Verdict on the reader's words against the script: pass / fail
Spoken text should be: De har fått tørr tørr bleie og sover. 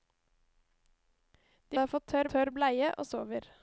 pass